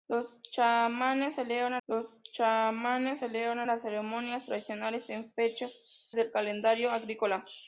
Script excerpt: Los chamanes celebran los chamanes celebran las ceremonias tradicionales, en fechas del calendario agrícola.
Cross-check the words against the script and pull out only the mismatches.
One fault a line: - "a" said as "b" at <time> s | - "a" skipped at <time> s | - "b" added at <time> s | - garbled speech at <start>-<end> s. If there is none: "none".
none